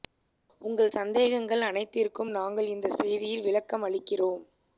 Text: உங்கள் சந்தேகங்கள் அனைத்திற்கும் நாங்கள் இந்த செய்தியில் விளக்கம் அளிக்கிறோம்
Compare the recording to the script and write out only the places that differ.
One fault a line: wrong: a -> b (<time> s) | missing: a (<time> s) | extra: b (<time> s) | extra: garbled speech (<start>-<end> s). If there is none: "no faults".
no faults